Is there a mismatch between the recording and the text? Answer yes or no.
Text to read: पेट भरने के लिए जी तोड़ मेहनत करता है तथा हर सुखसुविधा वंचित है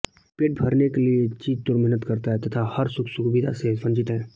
yes